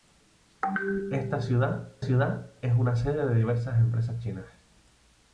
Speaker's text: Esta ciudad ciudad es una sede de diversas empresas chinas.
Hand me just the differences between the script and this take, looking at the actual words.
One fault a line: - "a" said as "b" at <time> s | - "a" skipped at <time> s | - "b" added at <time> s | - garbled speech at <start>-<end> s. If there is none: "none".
none